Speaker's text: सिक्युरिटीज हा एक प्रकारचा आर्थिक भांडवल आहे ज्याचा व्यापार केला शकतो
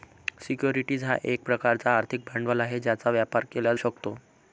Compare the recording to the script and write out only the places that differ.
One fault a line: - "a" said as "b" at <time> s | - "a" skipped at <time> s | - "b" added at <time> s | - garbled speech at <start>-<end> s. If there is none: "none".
none